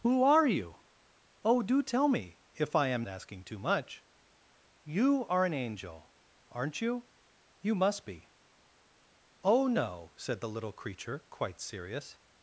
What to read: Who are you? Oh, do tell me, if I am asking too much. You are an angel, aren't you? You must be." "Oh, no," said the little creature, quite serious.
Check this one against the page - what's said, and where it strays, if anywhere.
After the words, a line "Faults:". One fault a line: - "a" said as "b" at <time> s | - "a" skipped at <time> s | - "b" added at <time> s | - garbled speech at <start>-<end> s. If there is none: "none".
Who are you? Oh, do tell me, if I am asking too much. You are an angel, aren't you? You must be." "Oh, no," said the little creature, quite serious.
Faults:
none